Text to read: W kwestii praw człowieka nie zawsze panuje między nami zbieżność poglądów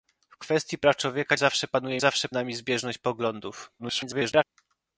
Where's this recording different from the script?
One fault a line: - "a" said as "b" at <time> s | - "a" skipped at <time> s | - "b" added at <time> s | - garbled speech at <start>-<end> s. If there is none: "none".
- "nie" skipped at 1.4 s
- "między" said as "zawsze" at 2.0 s
- garbled speech at 3.8-4.4 s